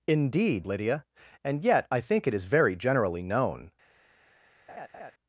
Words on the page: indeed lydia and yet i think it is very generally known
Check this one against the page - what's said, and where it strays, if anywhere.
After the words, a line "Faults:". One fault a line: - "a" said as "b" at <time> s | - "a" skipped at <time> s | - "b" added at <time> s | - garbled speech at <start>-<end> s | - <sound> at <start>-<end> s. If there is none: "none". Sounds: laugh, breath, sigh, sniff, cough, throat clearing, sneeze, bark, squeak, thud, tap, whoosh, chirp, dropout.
indeed lydia and yet i think it is very generally known
Faults:
- laugh at 4.7-5.1 s